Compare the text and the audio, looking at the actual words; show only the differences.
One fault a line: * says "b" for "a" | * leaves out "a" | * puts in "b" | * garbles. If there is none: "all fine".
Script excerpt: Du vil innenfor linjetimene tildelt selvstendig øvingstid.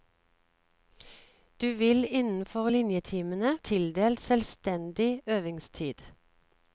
all fine